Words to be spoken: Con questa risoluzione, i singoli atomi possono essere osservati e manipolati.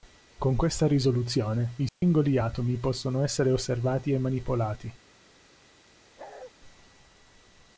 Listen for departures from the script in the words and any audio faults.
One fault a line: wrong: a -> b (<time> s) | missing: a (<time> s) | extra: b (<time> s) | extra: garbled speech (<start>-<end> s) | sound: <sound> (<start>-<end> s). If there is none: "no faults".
sound: dropout (1.9-2.0 s)
sound: bark (6.2-6.5 s)